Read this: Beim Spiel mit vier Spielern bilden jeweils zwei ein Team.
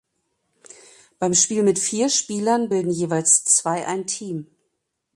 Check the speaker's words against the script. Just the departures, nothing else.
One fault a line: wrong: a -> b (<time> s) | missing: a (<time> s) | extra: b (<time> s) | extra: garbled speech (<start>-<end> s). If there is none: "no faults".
no faults